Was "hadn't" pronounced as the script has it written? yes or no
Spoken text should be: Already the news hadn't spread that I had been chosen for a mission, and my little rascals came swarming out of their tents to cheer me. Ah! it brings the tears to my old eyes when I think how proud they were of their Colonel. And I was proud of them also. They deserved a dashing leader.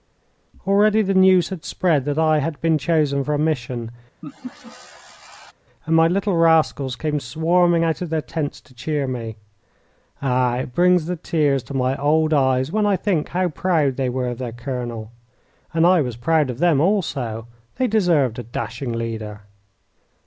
no